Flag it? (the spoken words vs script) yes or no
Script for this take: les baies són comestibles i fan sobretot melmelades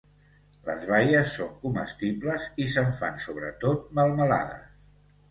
yes